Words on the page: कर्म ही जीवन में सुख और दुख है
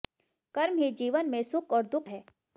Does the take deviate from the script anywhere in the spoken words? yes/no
no